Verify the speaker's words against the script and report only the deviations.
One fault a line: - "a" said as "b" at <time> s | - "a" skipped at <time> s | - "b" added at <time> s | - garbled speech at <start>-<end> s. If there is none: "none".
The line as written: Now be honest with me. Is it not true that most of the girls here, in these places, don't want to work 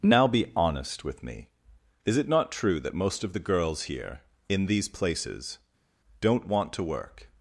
none